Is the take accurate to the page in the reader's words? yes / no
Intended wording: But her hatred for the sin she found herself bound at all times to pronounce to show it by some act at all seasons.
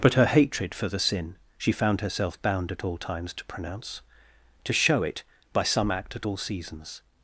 yes